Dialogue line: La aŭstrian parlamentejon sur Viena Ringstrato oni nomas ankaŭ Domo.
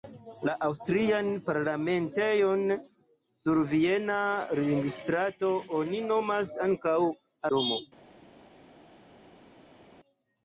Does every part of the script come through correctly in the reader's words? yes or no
yes